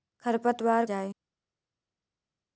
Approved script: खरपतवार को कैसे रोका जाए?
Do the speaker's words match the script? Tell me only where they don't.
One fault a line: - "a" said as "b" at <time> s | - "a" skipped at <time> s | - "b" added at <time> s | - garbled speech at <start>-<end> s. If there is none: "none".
- "को कैसे रोका" skipped at 0.8 s